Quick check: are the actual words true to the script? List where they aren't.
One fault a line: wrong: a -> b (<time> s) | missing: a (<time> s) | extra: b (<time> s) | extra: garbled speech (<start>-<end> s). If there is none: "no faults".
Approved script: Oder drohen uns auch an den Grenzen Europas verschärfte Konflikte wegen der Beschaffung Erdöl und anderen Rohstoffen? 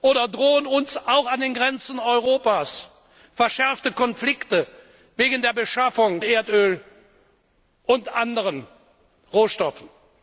no faults